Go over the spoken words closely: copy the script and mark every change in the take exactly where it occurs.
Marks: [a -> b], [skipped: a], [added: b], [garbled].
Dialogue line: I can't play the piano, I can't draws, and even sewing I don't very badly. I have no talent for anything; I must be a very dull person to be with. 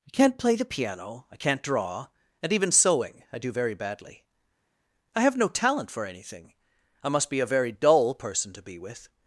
I can't play the piano, I can't [draws, -> draw] and even sewing I [don't -> do] very badly. I have no talent for anything; I must be a very dull person to be with.